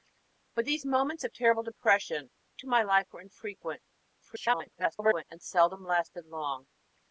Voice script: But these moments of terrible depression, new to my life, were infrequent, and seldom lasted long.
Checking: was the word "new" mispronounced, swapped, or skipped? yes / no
yes